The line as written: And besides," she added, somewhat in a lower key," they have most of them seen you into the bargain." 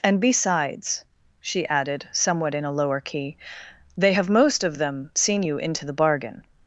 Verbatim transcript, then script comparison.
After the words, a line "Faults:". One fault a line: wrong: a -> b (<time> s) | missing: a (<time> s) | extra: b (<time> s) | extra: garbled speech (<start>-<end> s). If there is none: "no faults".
And besides," she added, somewhat in a lower key," they have most of them seen you into the bargain."
Faults:
no faults